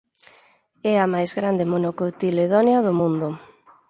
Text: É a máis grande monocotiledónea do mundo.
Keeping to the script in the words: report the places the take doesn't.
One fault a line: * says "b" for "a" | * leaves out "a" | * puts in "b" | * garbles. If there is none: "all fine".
all fine